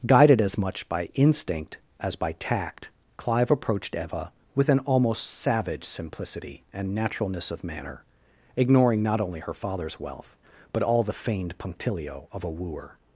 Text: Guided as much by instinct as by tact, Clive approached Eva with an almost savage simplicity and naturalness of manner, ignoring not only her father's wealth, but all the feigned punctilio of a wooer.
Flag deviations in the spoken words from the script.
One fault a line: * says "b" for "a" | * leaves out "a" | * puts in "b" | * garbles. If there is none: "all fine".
all fine